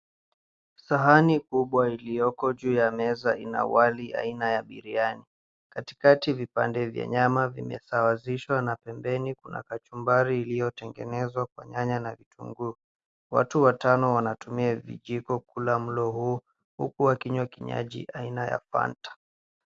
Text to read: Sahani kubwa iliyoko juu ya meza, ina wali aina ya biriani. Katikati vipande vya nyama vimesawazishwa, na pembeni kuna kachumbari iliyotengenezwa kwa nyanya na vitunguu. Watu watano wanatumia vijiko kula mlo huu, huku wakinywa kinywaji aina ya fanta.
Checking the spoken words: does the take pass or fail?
pass